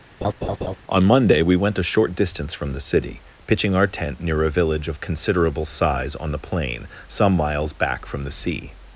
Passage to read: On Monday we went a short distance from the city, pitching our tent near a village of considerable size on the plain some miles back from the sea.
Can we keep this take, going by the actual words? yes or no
yes